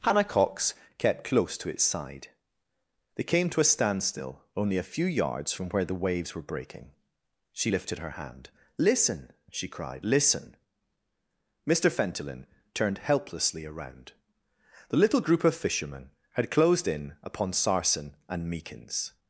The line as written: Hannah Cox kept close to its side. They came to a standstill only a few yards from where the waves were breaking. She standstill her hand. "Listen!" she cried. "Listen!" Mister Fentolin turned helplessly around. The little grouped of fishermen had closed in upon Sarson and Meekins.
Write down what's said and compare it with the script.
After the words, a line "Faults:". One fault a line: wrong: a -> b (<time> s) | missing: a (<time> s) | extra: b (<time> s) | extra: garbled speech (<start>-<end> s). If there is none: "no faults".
Hannah Cox kept close to its side. They came to a standstill only a few yards from where the waves were breaking. She lifted her hand. "Listen!" she cried. "Listen!" Mister Fentolin turned helplessly around. The little group of fishermen had closed in upon Sarson and Meekins.
Faults:
wrong: standstill -> lifted (7.7 s)
wrong: grouped -> group (15.2 s)